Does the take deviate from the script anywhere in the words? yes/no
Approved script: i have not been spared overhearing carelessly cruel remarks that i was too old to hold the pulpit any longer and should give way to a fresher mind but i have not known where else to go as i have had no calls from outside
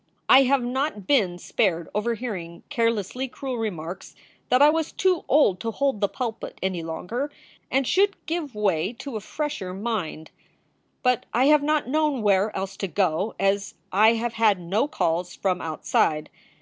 no